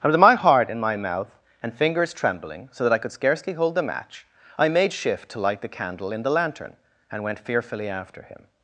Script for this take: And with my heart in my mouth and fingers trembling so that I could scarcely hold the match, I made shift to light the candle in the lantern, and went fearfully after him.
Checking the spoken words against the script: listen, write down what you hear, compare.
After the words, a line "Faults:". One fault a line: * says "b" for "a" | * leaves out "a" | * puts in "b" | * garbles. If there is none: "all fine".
And with my heart in my mouth and fingers trembling so that I could scarcely hold the match, I made shift to light the candle in the lantern, and went fearfully after him.
Faults:
all fine